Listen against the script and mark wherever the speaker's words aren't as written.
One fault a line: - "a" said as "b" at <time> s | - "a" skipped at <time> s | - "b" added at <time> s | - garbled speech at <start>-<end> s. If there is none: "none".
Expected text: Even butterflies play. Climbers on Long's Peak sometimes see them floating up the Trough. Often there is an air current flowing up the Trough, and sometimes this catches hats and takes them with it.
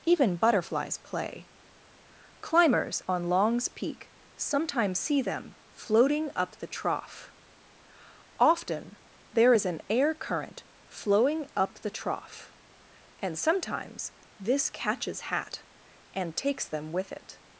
- "hats" said as "hat" at 15.2 s